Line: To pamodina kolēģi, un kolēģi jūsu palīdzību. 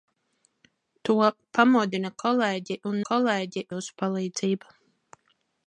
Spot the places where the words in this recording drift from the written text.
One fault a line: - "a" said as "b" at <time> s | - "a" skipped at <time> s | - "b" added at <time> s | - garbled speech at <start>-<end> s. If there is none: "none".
none